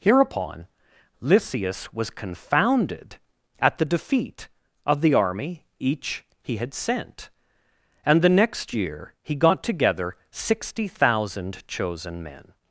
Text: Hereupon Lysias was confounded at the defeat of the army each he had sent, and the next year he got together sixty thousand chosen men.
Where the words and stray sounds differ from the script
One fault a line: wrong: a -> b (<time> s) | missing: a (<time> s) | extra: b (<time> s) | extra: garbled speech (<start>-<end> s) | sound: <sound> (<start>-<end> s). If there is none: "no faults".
no faults